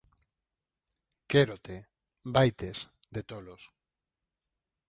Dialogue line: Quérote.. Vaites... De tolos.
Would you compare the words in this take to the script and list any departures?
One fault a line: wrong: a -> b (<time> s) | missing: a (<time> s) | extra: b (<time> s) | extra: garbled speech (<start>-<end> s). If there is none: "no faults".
no faults